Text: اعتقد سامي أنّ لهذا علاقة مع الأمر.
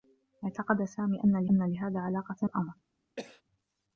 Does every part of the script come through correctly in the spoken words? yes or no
no